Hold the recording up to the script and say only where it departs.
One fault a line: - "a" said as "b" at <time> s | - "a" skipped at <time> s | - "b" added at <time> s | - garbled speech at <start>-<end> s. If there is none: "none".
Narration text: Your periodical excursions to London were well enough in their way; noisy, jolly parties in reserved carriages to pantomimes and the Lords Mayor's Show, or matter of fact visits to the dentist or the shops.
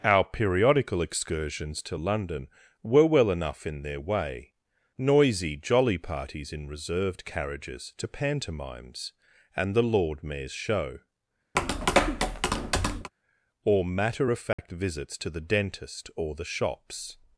- "Your" said as "Our" at 0.0 s
- "Lords" said as "Lord" at 9.8 s